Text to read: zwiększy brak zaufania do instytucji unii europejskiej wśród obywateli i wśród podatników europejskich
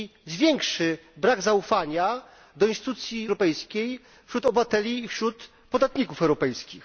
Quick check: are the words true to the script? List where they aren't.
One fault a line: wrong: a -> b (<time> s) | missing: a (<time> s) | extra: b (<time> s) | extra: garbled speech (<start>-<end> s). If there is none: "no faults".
missing: unii (3.3 s)